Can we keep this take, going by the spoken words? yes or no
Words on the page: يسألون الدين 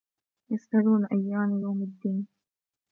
no